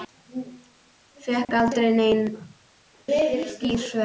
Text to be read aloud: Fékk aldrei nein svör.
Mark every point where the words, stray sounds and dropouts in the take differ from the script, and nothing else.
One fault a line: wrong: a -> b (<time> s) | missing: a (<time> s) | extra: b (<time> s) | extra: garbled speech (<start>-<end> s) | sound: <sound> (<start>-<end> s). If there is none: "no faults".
sound: dropout (1.4-1.5 s)